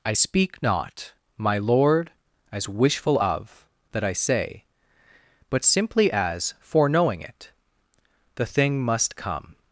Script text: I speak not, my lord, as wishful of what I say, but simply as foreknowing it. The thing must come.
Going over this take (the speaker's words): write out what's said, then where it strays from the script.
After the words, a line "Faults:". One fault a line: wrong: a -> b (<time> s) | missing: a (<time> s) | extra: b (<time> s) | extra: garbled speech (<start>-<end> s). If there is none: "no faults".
I speak not, my lord, as wishful of that I say, but simply as foreknowing it. The thing must come.
Faults:
wrong: what -> that (3.9 s)